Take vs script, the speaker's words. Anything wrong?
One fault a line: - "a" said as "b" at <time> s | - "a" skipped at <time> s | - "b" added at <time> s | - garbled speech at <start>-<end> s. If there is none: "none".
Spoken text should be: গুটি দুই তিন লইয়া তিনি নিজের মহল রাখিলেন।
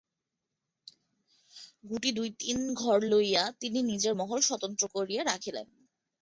- "ঘর" added at 2.7 s
- "স্বতন্ত্র করিয়া" added at 4.4 s